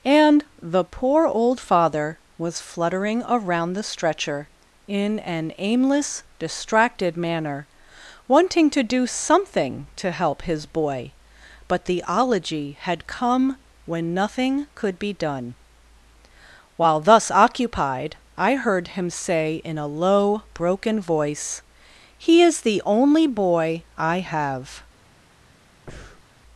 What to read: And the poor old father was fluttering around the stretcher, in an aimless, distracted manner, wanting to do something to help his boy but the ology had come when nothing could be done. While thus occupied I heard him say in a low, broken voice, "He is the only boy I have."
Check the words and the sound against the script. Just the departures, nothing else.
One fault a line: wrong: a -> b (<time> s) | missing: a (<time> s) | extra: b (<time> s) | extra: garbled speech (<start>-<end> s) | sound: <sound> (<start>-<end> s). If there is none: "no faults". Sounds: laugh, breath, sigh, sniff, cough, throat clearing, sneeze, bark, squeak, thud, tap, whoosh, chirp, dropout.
sound: breath (25.9-26.2 s)